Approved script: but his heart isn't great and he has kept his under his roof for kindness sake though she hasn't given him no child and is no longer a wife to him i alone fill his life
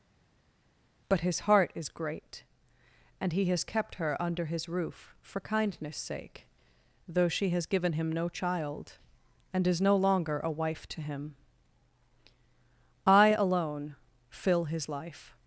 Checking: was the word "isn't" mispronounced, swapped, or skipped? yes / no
yes